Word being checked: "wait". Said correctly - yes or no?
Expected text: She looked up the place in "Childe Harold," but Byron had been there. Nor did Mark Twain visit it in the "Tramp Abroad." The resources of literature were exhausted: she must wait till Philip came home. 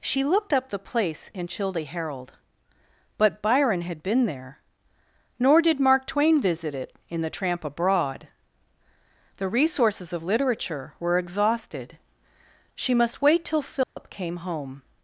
yes